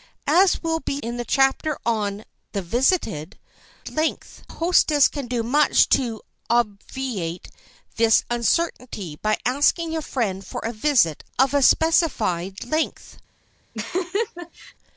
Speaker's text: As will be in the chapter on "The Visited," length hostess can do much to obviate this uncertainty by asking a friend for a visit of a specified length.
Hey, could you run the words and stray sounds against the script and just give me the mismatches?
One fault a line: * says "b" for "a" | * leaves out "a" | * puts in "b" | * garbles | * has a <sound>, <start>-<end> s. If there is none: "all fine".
* has a laugh, 13.7-14.7 s